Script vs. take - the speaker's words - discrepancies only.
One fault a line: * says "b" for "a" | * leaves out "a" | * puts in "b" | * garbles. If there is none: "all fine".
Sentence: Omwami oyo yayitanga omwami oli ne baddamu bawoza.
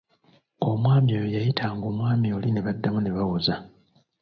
* puts in "ne"